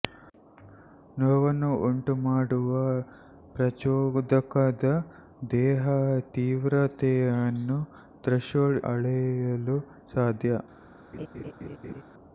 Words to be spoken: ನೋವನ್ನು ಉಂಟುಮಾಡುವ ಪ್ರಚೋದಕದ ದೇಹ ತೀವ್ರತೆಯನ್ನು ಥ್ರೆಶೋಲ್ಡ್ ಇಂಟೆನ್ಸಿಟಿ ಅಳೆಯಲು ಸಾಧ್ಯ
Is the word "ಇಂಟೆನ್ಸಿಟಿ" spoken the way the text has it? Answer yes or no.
no